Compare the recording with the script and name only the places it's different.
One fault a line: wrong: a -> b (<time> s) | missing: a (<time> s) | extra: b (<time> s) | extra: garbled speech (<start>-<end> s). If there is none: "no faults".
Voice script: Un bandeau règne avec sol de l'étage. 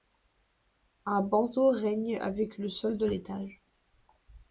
extra: le (2.6 s)